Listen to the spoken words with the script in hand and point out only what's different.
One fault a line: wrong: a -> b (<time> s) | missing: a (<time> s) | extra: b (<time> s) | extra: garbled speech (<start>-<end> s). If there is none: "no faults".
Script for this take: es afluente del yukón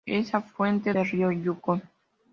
extra: río (1.1 s)